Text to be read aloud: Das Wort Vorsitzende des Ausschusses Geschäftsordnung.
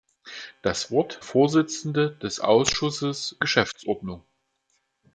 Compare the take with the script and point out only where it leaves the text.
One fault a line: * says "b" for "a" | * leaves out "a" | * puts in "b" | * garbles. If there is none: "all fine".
all fine